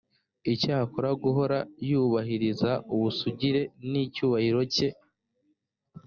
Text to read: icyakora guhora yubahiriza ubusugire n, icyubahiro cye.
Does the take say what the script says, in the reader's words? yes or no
yes